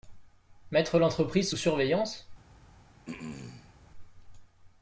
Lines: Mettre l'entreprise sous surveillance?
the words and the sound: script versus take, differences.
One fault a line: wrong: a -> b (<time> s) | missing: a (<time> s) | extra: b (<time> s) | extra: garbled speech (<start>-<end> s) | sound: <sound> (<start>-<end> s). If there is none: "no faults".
sound: throat clearing (3.0-3.7 s)